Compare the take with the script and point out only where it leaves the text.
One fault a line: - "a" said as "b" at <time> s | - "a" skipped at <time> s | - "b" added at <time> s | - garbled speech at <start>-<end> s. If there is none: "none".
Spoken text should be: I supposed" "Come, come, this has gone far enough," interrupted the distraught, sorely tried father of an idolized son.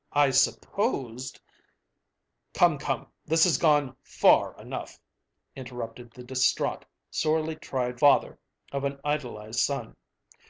none